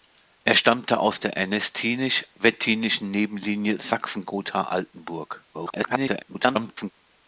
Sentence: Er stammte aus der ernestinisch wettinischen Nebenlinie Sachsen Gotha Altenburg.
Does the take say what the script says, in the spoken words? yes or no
no